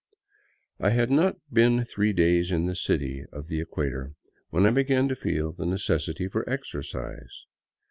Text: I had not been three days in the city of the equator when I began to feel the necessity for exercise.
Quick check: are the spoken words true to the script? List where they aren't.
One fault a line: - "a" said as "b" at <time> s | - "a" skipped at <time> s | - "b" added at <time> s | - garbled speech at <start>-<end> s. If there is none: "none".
none